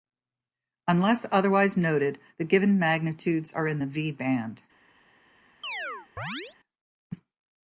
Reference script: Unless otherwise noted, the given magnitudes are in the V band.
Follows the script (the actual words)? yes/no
yes